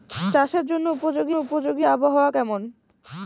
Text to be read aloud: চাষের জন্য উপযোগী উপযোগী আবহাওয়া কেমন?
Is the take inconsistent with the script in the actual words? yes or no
no